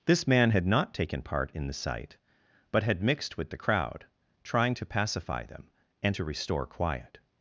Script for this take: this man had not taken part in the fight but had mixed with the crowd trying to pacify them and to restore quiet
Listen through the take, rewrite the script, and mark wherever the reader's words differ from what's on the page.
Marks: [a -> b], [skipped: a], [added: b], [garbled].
this man had not taken part in the [fight -> sight] but had mixed with the crowd trying to pacify them and to restore quiet